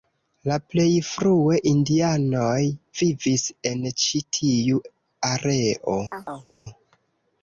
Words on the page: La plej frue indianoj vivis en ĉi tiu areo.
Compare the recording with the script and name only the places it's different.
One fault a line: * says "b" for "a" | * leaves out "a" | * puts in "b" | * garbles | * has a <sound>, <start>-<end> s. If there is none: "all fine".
* has a chirp, 6.1-6.5 s